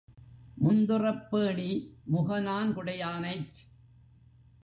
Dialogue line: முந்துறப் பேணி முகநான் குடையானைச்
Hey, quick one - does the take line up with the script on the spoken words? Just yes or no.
yes